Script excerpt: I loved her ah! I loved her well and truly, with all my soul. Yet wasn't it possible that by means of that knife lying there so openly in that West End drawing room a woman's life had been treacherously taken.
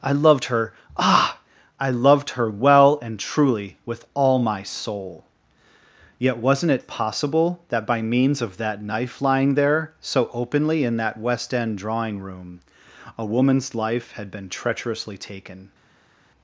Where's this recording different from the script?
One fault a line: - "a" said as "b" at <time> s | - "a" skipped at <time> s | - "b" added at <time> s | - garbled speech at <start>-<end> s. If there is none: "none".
none